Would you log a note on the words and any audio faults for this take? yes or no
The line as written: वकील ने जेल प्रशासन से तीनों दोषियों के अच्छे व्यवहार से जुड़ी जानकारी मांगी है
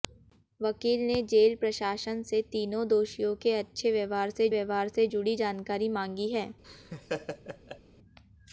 yes